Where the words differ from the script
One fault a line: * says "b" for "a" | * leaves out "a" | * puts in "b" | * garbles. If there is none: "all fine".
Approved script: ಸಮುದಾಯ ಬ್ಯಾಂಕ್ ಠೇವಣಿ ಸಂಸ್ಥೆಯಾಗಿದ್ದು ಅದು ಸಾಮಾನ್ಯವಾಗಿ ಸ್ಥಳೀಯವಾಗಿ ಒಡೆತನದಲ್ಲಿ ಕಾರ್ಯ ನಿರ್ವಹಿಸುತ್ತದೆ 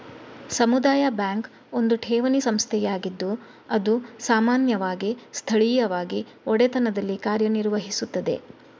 * puts in "ಒಂದು"